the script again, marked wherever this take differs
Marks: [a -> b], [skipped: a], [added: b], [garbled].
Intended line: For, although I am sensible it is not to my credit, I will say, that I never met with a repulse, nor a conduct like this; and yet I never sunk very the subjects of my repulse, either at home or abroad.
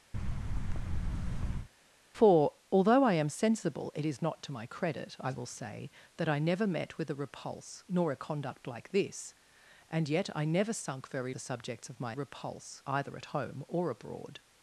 For, although I am sensible it is not to my credit, I will say, that I never met with a repulse, nor a conduct like this; and yet I never sunk very the subjects of my repulse, either at home or abroad.